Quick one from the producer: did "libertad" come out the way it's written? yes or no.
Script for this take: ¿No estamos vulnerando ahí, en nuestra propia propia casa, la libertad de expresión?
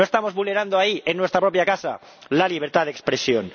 yes